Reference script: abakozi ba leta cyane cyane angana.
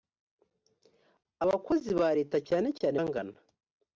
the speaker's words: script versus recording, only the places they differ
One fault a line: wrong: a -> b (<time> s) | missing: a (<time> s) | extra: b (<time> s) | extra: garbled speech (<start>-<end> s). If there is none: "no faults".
no faults